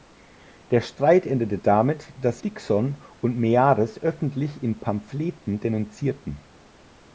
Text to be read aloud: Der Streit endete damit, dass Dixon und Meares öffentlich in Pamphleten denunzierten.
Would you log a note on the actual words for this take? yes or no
no